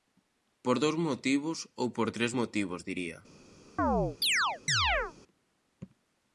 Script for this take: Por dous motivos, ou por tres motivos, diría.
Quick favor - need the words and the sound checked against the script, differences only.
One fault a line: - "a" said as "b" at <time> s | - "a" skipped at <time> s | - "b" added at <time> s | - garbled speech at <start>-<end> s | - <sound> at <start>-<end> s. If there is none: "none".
- chirp at 3.8-5.1 s